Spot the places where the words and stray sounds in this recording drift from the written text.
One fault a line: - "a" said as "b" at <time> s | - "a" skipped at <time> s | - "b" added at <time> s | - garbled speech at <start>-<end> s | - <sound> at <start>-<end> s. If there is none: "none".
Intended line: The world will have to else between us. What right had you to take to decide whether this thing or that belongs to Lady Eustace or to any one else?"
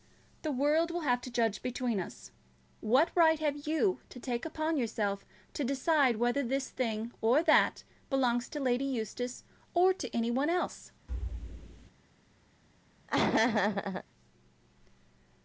- "else" said as "judge" at 1.3 s
- "had" said as "have" at 3.4 s
- "upon yourself" added at 4.5 s
- thud at 11.1-11.9 s
- laugh at 13.1-14.0 s